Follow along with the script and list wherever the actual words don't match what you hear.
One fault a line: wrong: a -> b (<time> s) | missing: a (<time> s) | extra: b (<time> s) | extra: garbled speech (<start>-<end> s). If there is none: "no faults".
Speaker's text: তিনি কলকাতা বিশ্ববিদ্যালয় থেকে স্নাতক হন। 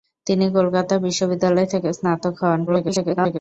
extra: garbled speech (2.7-3.4 s)